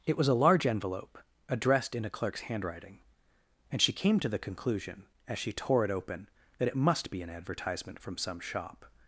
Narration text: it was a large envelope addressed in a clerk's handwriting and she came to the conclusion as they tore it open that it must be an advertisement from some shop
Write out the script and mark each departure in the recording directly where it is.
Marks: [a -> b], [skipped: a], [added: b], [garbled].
it was a large envelope addressed in a clerk's handwriting and she came to the conclusion as [they -> she] tore it open that it must be an advertisement from some shop